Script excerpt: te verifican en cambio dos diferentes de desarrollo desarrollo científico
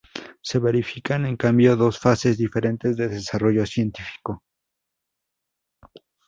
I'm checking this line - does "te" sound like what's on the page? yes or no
no